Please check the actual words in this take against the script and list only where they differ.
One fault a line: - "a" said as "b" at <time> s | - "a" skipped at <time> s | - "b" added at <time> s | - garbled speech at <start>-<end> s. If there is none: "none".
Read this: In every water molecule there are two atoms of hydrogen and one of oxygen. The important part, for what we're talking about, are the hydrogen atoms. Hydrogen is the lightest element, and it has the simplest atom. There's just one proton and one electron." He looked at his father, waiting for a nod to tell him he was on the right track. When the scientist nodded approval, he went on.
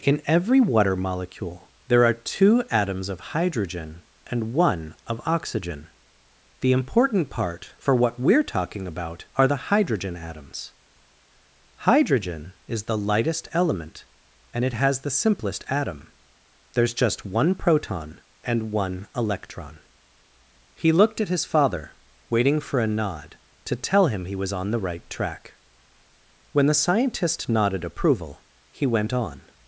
none